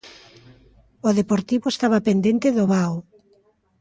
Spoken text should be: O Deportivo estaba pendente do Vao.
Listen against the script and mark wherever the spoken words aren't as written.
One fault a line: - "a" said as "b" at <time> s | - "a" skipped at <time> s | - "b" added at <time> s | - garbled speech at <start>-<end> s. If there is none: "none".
none